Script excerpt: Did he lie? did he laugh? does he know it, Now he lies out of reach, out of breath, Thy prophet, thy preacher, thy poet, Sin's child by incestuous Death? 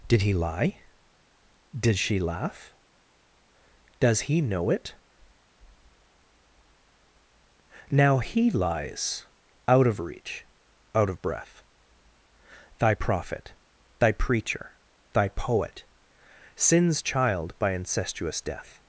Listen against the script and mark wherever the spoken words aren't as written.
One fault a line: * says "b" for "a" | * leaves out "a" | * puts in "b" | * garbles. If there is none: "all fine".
* says "she" for "he"